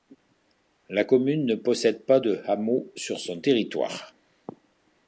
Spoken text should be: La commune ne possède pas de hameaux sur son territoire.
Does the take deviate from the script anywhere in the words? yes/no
no